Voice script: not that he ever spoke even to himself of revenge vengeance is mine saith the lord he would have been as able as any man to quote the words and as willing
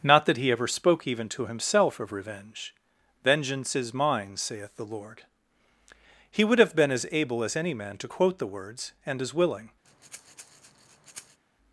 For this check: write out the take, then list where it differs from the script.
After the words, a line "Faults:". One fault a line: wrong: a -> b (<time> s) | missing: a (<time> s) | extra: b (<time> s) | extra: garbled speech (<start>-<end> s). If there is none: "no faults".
not that he ever spoke even to himself of revenge vengeance is mine saith the lord he would have been as able as any man to quote the words and as willing
Faults:
no faults